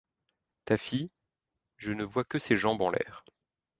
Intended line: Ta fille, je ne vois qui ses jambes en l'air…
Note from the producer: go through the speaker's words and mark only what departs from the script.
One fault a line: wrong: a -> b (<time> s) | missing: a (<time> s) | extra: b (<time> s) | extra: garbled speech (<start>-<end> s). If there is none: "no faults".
wrong: qui -> que (2.2 s)